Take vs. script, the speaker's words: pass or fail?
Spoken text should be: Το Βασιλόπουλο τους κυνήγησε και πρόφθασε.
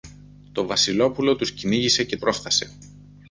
pass